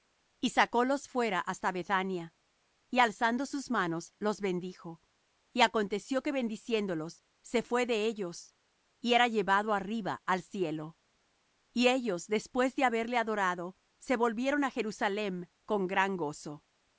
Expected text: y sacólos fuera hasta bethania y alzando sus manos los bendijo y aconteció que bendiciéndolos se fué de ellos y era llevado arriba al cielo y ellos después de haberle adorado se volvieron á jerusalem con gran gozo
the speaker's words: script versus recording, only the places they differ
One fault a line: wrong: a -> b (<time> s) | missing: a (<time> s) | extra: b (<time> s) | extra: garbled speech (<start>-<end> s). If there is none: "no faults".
no faults